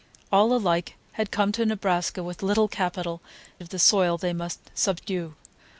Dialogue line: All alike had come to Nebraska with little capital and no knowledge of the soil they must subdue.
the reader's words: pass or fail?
fail